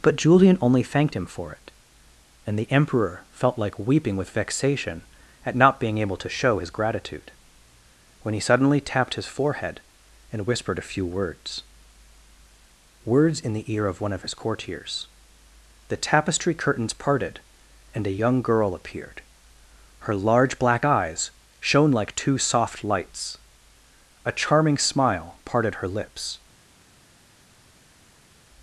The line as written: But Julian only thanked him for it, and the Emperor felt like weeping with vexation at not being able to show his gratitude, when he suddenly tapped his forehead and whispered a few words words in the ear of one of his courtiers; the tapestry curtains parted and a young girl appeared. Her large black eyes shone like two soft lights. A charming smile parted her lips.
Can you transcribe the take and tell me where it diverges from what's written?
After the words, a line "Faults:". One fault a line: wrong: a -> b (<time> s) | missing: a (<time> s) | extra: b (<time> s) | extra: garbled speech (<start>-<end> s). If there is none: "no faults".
But Julian only thanked him for it, and the Emperor felt like weeping with vexation at not being able to show his gratitude, when he suddenly tapped his forehead and whispered a few words words in the ear of one of his courtiers; the tapestry curtains parted and a young girl appeared. Her large black eyes shone like two soft lights. A charming smile parted her lips.
Faults:
no faults